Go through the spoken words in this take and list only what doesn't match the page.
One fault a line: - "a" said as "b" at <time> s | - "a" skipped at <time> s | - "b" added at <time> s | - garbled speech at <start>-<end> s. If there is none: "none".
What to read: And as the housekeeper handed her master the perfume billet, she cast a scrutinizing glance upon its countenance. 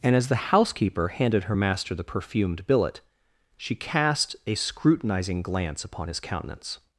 - "perfume" said as "perfumed" at 2.0 s
- "its" said as "his" at 6.1 s